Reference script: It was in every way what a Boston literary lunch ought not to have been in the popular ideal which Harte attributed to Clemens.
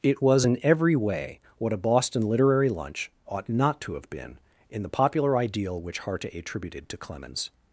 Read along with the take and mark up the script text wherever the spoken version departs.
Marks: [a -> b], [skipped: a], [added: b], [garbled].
It was in every way what a Boston literary lunch ought not to have been in the popular ideal which Harte attributed to Clemens.